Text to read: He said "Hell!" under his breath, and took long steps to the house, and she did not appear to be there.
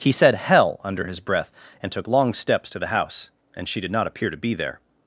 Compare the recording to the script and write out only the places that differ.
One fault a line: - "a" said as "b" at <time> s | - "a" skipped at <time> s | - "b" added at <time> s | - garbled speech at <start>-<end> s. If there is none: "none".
none